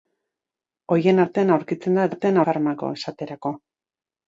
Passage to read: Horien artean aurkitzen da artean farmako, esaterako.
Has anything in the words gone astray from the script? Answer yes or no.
no